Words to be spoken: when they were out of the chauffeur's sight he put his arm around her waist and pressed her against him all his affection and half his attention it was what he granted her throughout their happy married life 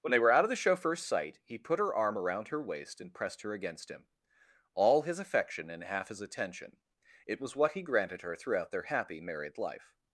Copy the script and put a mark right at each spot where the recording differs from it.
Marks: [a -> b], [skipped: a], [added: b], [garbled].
when they were out of the chauffeur's sight he put [his -> her] arm around her waist and pressed her against him all his affection and half his attention it was what he granted her throughout their happy married life